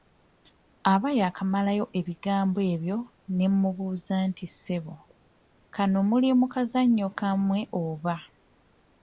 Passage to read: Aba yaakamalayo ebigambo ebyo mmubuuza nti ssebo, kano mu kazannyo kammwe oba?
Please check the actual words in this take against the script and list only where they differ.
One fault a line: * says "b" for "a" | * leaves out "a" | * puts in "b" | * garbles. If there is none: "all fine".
* puts in "ne"
* puts in "muli"